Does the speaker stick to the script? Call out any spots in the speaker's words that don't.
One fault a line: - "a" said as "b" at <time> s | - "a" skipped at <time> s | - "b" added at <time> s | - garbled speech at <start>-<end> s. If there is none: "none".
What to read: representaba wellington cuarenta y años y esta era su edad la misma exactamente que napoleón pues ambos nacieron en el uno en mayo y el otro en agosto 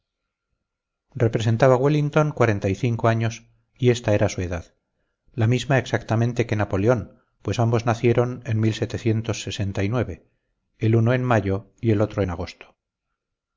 - "cinco" added at 2.7 s